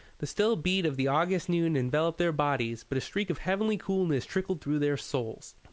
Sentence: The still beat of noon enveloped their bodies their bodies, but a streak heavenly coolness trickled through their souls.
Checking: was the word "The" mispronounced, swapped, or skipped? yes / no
no